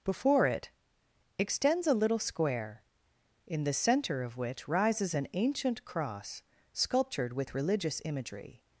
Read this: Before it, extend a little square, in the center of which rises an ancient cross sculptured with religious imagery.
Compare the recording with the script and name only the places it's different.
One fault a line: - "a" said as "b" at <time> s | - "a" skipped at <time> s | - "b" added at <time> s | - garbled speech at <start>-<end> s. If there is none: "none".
- "extend" said as "extends" at 1.4 s